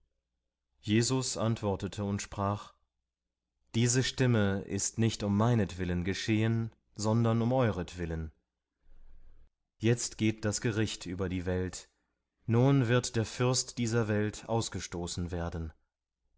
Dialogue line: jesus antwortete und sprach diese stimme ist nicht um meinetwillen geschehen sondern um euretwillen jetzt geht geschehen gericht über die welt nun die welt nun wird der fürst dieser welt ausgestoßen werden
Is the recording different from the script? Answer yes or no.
yes